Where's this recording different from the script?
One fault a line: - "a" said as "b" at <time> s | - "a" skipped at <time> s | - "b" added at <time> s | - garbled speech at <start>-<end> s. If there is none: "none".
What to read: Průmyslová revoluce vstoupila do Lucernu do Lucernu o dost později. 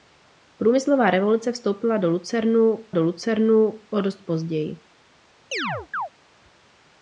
none